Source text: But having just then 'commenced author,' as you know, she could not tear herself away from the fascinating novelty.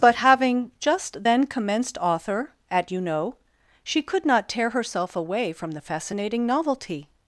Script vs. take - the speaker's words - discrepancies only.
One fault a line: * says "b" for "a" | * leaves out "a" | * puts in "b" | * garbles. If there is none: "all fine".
* says "at" for "as"